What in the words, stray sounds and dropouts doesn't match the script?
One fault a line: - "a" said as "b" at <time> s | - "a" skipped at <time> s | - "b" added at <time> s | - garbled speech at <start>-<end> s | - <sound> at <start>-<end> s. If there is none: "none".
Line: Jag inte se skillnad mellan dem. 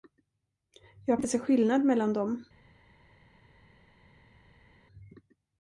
none